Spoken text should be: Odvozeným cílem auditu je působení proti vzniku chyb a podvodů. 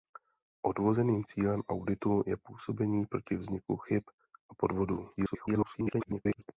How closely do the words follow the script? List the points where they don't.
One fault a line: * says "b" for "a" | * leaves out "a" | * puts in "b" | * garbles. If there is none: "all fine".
* garbles